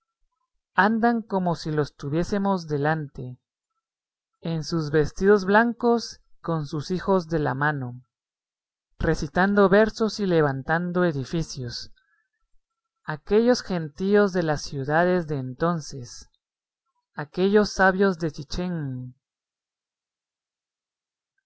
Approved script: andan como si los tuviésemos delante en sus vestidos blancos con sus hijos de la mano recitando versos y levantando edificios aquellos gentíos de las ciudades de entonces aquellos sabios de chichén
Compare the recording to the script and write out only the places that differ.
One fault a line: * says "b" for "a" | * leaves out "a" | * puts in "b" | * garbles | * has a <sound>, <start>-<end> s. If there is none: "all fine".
all fine